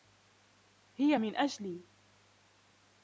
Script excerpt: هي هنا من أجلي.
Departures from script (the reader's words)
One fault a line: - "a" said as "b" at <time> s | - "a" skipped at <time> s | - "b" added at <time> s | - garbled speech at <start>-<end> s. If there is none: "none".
- "هنا" skipped at 1.1 s